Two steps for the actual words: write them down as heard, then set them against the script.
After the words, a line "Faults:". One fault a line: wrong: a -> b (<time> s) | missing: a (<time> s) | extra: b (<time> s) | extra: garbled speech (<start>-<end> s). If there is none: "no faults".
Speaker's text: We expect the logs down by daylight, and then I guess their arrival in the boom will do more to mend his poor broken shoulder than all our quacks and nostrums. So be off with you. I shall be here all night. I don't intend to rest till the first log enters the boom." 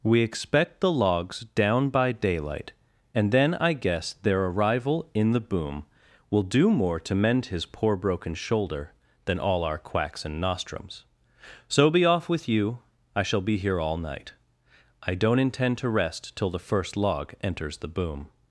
We expect the logs down by daylight, and then I guess their arrival in the boom will do more to mend his poor broken shoulder than all our quacks and nostrums. So be off with you. I shall be here all night. I don't intend to rest till the first log enters the boom."
Faults:
no faults